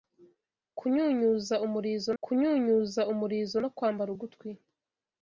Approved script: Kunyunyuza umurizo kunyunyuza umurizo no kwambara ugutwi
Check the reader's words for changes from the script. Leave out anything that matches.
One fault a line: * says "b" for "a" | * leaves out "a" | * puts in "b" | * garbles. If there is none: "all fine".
all fine